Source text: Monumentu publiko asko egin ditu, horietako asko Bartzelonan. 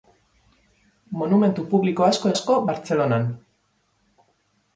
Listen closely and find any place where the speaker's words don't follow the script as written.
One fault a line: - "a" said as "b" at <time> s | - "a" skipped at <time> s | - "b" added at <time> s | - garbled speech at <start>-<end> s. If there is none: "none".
- "egin ditu horietako" skipped at 2.3 s